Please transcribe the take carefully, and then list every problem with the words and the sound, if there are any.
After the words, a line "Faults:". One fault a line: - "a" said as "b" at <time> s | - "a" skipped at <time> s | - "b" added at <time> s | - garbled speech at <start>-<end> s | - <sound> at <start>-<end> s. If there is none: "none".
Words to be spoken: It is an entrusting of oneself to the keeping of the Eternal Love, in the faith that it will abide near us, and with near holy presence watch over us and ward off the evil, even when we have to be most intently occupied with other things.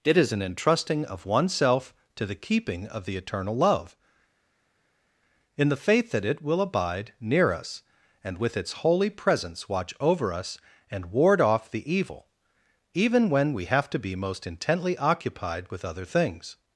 It is an entrusting of oneself to the keeping of the Eternal Love, in the faith that it will abide near us, and with its holy presence watch over us and ward off the evil, even when we have to be most intently occupied with other things.
Faults:
- "near" said as "its" at 8.6 s